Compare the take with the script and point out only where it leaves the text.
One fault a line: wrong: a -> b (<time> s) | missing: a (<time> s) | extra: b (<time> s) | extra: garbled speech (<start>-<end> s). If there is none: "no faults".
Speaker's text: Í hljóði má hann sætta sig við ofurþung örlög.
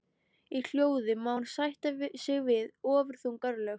no faults